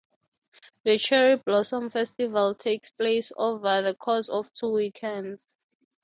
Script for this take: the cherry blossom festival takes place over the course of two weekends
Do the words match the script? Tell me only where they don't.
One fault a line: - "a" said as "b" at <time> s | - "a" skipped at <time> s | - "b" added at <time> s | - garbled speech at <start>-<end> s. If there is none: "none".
none